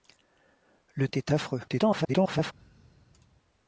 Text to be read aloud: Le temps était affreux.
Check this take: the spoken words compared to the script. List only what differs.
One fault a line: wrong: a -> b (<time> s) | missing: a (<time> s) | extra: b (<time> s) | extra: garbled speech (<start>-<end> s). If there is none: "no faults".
missing: temps (1.1 s)
extra: garbled speech (1.7-2.5 s)